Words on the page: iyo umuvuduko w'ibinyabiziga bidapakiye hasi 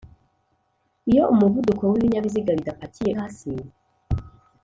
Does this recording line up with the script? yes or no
yes